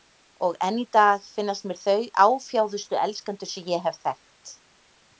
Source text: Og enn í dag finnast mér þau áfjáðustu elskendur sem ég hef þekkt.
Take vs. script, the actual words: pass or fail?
pass